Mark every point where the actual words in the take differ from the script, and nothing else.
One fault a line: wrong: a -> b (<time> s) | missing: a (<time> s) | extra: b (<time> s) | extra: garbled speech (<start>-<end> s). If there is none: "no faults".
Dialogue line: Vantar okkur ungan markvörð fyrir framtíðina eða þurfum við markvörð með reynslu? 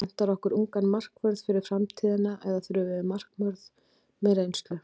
no faults